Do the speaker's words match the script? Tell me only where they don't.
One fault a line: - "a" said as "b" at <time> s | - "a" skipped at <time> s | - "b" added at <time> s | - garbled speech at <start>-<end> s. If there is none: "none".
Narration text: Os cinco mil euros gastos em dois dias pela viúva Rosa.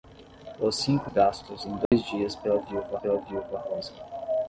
- "mil euros" skipped at 1.1 s
- "pela viúva" added at 3.0 s